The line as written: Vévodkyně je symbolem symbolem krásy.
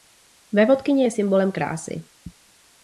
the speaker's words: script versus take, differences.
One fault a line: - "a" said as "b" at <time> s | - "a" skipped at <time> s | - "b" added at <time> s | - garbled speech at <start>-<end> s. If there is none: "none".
- "symbolem" skipped at 1.5 s